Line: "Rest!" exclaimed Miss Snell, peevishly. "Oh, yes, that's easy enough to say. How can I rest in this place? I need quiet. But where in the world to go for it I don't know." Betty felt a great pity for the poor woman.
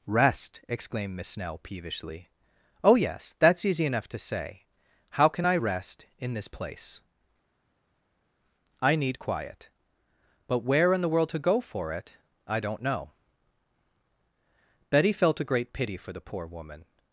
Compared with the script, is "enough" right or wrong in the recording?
right